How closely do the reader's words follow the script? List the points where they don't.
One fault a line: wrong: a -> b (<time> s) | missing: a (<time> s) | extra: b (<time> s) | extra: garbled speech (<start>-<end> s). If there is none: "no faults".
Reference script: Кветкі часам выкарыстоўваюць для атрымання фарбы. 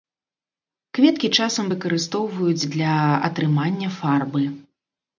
no faults